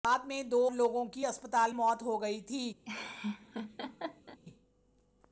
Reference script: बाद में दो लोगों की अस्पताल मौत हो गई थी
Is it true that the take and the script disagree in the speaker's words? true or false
false